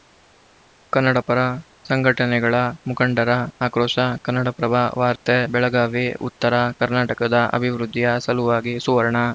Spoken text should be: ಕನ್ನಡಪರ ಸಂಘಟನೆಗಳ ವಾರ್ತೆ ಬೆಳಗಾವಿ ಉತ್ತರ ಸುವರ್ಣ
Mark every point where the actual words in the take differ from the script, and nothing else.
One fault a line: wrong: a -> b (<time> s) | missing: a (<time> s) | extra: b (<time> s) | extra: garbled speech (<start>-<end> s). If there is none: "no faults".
extra: ಮುಖಂಡರ ಆಕ್ರೋಶ ಕನ್ನಡಪ್ರಭ (2.9 s)
extra: ಕರ್ನಾಟಕದ ಅಭಿವೃದ್ಧಿಯ ಸಲುವಾಗಿ (6.8 s)